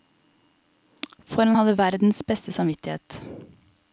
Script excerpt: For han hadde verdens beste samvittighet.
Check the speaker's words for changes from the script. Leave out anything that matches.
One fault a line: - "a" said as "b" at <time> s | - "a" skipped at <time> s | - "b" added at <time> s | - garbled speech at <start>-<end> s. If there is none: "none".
none